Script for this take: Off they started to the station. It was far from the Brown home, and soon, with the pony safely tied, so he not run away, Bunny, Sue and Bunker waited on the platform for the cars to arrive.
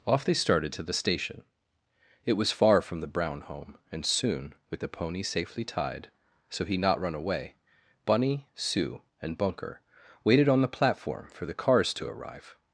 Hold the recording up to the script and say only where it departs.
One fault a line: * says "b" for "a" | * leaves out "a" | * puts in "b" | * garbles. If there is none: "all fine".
all fine